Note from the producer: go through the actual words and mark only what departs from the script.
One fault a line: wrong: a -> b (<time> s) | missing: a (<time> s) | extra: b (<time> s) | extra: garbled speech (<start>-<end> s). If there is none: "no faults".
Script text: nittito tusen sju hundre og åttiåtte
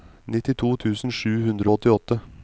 no faults